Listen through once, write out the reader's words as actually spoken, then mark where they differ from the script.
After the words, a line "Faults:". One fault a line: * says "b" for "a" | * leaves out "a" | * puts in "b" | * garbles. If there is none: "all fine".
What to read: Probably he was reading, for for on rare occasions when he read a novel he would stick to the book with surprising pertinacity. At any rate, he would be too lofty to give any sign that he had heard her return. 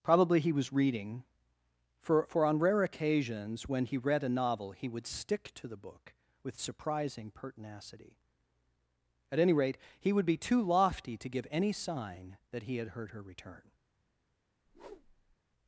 Probably he was reading, for for on rare occasions when he read a novel he would stick to the book with surprising pertinacity. At any rate, he would be too lofty to give any sign that he had heard her return.
Faults:
all fine